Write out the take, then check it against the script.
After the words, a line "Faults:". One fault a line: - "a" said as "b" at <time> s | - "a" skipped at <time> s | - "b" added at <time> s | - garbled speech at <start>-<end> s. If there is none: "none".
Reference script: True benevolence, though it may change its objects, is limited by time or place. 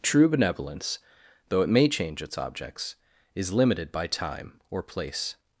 True benevolence, though it may change its objects, is limited by time or place.
Faults:
none